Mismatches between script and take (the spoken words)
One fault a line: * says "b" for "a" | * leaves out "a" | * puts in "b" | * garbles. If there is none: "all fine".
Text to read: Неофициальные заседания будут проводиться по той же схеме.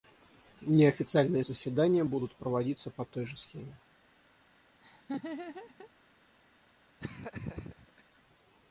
all fine